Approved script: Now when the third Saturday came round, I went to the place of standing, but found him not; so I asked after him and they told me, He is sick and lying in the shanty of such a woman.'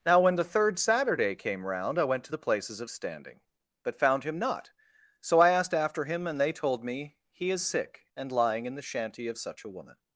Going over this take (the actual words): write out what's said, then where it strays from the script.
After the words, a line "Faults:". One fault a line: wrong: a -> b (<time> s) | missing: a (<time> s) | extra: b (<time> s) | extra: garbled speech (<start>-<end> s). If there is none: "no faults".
Now when the third Saturday came round, I went to the places of standing, but found him not; so I asked after him and they told me, He is sick and lying in the shanty of such a woman.'
Faults:
wrong: place -> places (2.4 s)